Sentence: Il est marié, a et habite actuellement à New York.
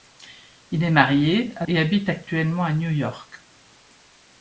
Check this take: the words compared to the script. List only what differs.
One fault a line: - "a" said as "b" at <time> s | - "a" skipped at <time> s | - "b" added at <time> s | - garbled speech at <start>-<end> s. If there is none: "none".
none